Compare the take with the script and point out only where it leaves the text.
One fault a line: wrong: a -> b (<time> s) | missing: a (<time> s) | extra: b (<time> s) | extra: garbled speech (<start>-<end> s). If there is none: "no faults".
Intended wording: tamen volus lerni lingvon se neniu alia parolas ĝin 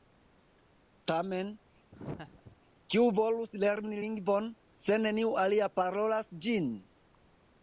extra: kiu (2.9 s)